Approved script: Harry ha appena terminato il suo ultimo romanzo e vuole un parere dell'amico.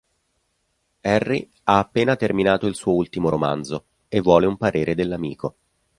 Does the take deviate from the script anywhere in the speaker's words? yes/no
no